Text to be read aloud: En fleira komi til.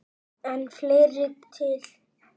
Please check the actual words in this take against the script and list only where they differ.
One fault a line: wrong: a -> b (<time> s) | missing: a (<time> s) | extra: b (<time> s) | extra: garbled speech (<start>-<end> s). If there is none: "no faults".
missing: komi (1.3 s)